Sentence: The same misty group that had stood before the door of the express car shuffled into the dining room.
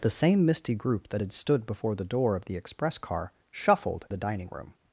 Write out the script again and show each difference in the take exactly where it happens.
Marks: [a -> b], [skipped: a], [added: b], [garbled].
The same misty group that had stood before the door of the express car shuffled [skipped: into] the dining room.